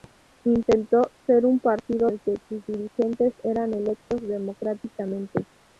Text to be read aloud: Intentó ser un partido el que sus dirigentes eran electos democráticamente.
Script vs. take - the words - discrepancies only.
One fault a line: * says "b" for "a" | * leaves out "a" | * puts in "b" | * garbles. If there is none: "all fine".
all fine